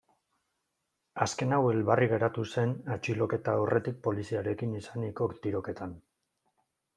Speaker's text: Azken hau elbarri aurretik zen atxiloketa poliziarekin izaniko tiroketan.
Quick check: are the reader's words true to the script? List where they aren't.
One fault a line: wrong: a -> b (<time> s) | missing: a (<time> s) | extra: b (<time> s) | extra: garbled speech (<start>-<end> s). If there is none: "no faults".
wrong: aurretik -> geratu (2.1 s)
extra: aurretik (3.6 s)